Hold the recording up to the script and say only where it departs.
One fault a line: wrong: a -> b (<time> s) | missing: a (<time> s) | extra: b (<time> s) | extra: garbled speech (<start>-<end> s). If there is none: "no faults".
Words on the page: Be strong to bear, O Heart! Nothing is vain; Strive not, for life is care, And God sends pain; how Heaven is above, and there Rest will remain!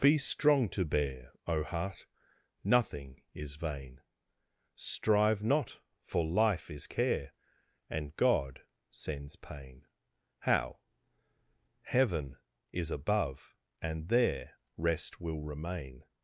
no faults